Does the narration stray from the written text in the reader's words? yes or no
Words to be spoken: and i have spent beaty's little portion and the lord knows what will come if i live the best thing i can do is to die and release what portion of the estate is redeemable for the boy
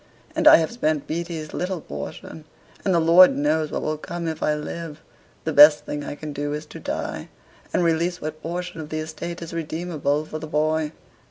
no